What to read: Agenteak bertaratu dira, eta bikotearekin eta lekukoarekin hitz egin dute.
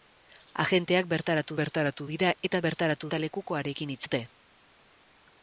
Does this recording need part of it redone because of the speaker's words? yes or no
yes